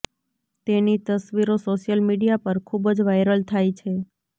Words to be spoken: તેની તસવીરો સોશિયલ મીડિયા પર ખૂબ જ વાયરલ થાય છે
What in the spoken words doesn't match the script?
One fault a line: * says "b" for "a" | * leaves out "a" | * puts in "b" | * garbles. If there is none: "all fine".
all fine